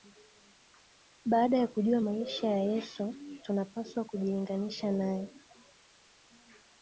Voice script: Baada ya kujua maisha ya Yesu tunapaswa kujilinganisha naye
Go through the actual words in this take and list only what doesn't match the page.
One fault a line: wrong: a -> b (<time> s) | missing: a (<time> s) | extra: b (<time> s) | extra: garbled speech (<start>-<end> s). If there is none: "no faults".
no faults